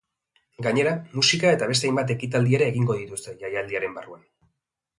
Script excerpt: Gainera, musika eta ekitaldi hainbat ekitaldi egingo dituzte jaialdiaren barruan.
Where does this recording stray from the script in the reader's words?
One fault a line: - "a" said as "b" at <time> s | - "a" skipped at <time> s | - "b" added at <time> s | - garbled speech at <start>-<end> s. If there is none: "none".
- "ekitaldi" said as "beste" at 1.7 s
- "ere" added at 2.6 s